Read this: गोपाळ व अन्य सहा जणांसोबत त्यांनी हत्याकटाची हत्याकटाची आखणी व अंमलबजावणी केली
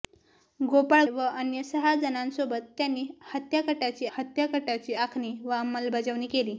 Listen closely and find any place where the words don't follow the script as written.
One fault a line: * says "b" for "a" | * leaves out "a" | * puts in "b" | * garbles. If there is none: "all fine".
all fine